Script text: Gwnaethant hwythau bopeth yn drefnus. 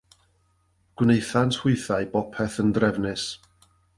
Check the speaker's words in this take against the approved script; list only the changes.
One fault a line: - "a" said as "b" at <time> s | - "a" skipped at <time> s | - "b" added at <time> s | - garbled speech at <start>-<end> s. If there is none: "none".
none